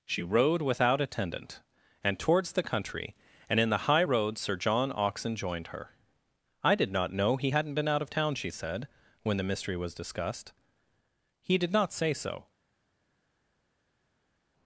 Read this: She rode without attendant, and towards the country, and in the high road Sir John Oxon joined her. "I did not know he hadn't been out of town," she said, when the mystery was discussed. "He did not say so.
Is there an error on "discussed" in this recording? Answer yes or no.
no